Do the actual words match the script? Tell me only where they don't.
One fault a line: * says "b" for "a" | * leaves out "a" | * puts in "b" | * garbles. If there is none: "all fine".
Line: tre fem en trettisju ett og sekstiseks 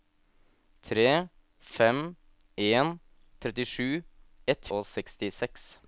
all fine